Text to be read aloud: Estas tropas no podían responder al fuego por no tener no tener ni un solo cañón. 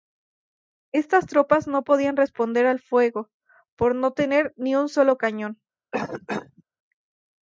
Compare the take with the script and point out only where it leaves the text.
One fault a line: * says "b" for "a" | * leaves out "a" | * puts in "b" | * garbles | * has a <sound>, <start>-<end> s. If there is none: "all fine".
* leaves out "no tener"
* has a cough, 5.9-6.6 s